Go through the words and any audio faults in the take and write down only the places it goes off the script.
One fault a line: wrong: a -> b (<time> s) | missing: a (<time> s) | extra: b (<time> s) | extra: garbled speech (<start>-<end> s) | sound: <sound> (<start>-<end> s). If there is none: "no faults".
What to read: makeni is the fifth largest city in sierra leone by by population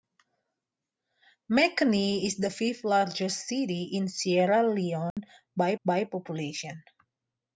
sound: dropout (5.1-5.2 s)